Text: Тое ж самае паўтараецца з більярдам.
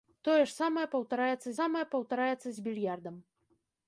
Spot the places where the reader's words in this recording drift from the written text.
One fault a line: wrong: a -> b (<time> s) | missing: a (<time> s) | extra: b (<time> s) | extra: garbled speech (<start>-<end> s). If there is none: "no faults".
extra: самае паўтараецца (1.6 s)